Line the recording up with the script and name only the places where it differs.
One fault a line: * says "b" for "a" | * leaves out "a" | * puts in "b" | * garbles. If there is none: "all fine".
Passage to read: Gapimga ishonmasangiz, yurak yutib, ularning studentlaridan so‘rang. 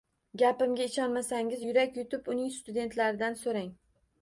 * says "uning" for "ularning"